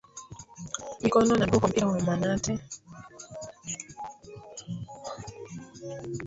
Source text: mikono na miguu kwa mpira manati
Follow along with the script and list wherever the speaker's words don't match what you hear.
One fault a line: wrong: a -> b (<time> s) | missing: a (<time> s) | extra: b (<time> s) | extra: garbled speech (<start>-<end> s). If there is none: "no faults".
extra: wa (1.9 s)